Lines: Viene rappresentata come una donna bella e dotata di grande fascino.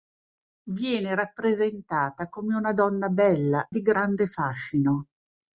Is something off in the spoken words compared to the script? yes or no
yes